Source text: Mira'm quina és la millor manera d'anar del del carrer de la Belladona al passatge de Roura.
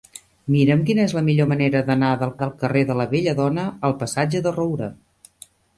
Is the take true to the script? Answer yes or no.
yes